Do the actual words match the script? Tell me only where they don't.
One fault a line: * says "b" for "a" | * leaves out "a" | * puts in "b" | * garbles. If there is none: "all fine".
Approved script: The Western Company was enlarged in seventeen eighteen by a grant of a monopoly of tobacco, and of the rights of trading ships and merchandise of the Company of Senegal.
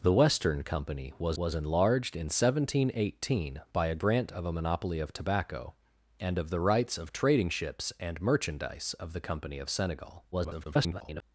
* puts in "was"
* garbles